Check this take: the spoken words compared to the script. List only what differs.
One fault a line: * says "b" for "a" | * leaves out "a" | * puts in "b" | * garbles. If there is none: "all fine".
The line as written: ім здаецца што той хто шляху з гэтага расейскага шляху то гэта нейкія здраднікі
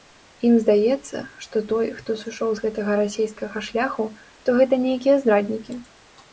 * says "сышоў" for "шляху"